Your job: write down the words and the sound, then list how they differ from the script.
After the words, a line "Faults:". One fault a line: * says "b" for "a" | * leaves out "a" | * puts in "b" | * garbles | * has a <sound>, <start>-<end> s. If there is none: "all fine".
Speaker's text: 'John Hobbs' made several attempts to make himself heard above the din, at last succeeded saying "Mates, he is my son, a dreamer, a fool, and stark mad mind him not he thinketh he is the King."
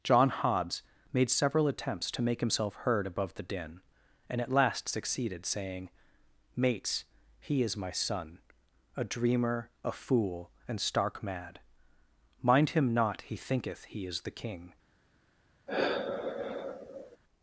'John Hobbs' made several attempts to make himself heard above the din, and at last succeeded saying "Mates, he is my son, a dreamer, a fool, and stark mad mind him not he thinketh he is the King."
Faults:
* puts in "and"
* has a sigh, 15.7-17.2 s